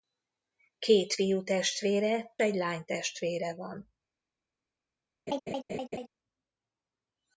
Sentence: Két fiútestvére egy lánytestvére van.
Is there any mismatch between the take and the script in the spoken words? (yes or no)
no